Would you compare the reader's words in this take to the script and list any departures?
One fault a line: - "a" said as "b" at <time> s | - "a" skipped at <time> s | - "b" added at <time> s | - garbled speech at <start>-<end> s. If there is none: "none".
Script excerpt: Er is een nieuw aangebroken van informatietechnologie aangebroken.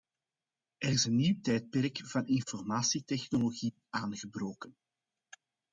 - "aangebroken" said as "tijdperk" at 1.4 s